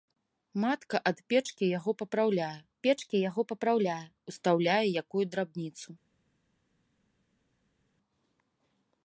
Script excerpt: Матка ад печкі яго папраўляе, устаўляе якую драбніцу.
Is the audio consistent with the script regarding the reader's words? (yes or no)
no